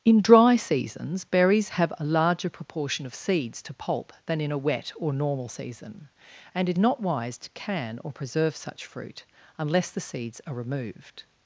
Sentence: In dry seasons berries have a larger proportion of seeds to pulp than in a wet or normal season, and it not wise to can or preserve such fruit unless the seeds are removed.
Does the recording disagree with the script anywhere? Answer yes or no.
no